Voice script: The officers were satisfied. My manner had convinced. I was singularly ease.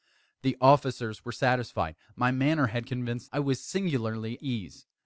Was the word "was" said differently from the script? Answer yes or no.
no